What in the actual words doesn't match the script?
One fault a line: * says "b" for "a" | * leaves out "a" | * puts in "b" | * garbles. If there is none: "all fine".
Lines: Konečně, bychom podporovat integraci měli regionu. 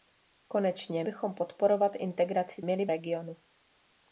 all fine